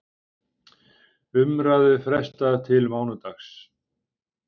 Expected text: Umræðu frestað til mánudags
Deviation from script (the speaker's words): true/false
false